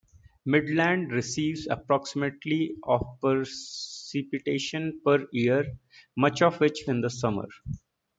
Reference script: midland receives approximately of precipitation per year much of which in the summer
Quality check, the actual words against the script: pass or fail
pass